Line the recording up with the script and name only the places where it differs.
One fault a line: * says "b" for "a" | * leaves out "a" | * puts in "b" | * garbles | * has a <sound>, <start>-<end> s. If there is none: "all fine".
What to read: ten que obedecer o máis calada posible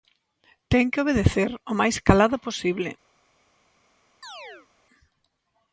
* has a chirp, 4.2-4.7 s